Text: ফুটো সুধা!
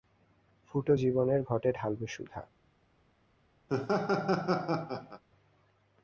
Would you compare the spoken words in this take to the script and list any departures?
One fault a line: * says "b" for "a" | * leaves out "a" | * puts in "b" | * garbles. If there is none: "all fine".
* puts in "জীবনের ঘটে ঢালবে"